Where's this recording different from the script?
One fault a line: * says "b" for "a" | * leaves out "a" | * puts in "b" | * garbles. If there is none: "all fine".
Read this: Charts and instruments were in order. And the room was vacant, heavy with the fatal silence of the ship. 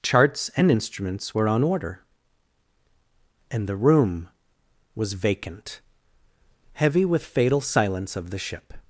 * says "on" for "in"
* leaves out "the"